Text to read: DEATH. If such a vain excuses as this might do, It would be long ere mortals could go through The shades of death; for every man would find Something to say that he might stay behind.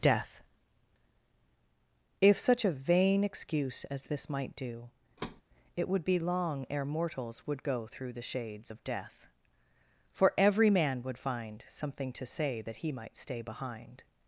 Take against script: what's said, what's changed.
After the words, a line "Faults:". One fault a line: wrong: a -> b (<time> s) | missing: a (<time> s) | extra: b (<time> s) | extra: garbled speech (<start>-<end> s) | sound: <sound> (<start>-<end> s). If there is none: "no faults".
DEATH. If such a vain excuse as this might do, It would be long ere mortals would go through The shades of death; for every man would find Something to say that he might stay behind.
Faults:
wrong: excuses -> excuse (3.2 s)
sound: thud (5.2-5.4 s)
wrong: could -> would (7.5 s)